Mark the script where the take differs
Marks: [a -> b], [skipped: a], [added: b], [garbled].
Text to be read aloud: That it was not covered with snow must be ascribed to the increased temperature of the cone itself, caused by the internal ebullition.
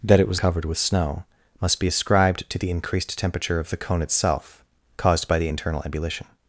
That it was [skipped: not] covered with snow must be ascribed to the increased temperature of the cone itself, caused by the internal ebullition.